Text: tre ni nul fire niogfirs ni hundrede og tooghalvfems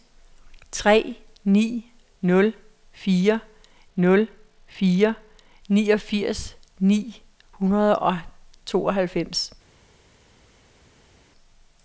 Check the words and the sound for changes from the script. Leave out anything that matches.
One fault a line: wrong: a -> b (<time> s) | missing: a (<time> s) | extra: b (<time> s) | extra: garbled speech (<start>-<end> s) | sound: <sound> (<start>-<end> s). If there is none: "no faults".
extra: nul fire (4.0 s)